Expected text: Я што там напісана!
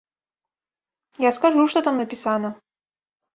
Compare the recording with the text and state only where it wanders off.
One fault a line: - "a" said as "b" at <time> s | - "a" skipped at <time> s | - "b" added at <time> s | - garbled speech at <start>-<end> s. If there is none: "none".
- "скажу" added at 1.4 s